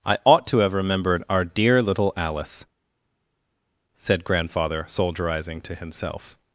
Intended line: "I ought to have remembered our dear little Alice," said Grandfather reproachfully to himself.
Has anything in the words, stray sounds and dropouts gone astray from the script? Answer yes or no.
yes